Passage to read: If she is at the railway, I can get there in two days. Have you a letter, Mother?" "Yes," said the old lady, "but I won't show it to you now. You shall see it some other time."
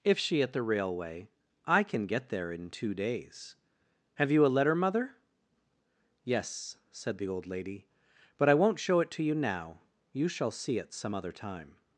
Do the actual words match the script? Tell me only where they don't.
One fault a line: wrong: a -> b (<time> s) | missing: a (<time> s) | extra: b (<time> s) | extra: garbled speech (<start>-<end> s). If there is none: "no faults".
missing: is (0.4 s)